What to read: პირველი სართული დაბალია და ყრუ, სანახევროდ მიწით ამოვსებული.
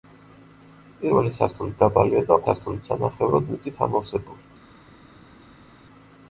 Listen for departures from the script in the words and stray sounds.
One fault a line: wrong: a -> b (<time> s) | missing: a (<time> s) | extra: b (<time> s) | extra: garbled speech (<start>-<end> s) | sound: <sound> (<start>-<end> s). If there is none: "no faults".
wrong: ყრუ -> სართული (2.5 s)